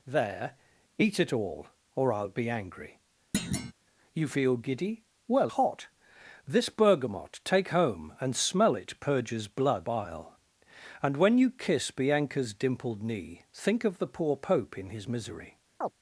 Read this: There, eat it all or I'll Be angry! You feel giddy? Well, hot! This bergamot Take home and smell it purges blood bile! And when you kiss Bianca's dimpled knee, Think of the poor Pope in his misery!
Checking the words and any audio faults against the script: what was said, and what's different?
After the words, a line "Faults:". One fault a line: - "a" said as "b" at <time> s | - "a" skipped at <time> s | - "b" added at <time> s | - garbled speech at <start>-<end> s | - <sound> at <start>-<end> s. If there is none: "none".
There, eat it all or I'll Be angry! You feel giddy? Well, hot! This bergamot Take home and smell it purges blood bile! And when you kiss Bianca's dimpled knee, Think of the poor Pope in his misery!
Faults:
- thud at 3.3-3.7 s
- chirp at 15.8-15.9 s